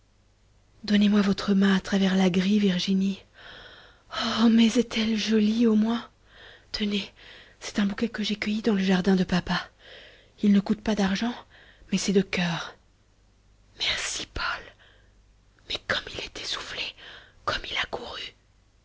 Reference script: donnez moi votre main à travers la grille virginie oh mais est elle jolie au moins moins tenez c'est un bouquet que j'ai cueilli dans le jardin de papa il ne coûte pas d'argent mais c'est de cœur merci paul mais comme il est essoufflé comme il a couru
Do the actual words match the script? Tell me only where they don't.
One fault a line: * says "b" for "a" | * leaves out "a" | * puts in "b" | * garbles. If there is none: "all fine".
* leaves out "moins"